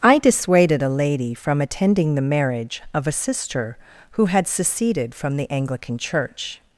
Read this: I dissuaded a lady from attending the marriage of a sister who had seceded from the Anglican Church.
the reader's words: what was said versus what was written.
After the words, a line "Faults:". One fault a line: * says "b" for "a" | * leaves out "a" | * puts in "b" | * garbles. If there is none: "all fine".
I dissuaded a lady from attending the marriage of a sister who had seceded from the Anglican Church.
Faults:
all fine